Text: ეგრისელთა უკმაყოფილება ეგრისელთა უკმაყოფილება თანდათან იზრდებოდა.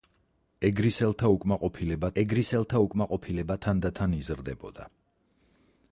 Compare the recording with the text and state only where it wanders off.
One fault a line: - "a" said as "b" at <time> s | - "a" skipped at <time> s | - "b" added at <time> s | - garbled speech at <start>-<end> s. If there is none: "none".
none